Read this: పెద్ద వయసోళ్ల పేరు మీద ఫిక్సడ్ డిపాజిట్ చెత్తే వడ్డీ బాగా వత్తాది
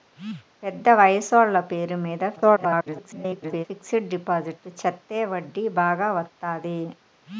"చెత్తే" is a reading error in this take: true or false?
false